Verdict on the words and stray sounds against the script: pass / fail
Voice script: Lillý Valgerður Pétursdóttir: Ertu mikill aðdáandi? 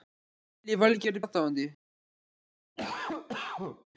fail